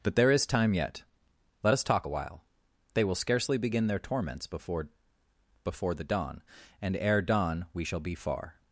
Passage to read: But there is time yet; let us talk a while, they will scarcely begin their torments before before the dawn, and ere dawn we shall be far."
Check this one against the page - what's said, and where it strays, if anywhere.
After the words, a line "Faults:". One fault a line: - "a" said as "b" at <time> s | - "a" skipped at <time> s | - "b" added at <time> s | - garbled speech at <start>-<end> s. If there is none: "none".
But there is time yet; let us talk a while, they will scarcely begin their torments before before the dawn, and ere dawn we shall be far."
Faults:
none